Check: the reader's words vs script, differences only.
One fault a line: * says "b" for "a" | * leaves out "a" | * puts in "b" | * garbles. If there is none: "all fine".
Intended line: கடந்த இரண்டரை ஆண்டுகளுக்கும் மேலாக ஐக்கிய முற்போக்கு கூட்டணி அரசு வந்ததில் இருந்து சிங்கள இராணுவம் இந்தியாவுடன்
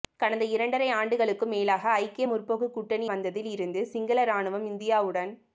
* leaves out "அரசு"